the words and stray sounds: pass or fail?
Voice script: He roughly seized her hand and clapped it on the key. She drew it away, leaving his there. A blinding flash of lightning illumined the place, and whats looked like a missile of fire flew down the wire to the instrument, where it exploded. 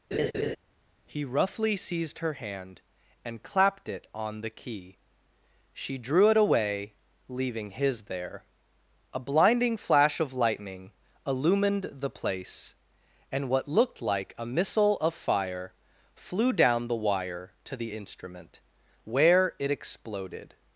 fail